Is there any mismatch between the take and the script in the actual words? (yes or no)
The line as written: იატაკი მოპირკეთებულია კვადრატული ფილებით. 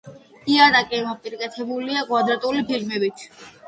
no